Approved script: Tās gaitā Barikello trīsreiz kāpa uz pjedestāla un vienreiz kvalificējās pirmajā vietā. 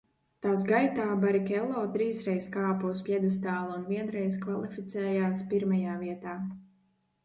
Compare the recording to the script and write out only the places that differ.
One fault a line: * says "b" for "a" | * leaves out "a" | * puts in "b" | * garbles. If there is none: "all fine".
all fine